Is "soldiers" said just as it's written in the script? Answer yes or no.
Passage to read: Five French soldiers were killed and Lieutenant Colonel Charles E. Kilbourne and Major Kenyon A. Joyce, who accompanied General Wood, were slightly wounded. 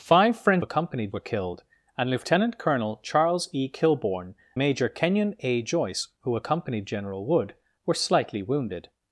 no